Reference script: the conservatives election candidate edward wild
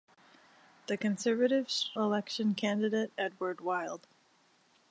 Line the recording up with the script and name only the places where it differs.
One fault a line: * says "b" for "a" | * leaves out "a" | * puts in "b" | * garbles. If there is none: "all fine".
all fine